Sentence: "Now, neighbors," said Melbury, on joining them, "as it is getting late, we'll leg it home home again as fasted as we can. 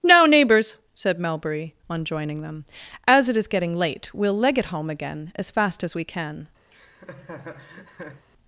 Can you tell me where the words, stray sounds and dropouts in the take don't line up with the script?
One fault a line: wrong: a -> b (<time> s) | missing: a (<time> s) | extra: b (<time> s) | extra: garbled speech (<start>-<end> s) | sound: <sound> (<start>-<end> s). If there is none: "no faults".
missing: home (4.9 s)
wrong: fasted -> fast (5.5 s)
sound: laugh (6.7-8.2 s)